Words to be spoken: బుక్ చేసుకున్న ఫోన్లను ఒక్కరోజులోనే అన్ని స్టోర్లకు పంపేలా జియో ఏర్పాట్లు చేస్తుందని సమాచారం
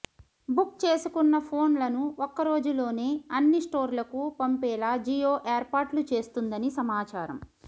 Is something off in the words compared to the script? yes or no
no